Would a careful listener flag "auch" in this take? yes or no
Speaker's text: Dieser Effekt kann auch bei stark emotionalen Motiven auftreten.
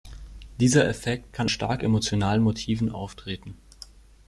yes